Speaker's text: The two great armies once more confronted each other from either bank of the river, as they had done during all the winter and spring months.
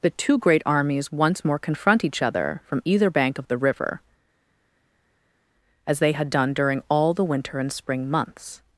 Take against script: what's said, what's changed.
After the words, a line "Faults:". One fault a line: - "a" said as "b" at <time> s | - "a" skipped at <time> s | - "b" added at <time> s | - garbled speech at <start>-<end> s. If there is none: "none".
The two great armies once more confront each other from either bank of the river, as they had done during all the winter and spring months.
Faults:
- "confronted" said as "confront" at 1.6 s